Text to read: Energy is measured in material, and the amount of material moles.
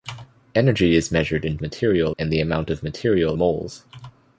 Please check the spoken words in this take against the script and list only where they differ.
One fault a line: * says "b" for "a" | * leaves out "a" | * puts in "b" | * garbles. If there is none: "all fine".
all fine